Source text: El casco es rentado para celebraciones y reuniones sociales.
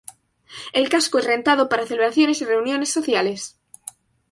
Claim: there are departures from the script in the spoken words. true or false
false